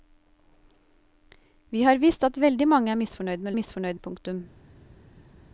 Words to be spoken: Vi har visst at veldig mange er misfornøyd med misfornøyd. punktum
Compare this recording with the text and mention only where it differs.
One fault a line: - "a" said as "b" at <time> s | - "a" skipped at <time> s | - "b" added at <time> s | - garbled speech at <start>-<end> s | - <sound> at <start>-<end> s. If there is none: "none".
none